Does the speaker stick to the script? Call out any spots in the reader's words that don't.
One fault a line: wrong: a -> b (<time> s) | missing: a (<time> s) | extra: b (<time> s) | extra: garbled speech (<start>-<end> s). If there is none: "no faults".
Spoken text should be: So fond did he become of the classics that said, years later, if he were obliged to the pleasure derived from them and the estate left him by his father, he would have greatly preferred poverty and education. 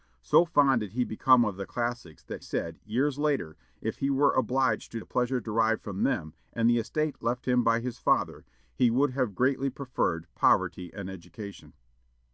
no faults